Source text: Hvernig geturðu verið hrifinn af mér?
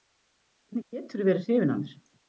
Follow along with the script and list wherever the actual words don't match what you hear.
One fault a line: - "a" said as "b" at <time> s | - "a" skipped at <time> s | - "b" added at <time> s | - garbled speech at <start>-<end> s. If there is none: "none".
none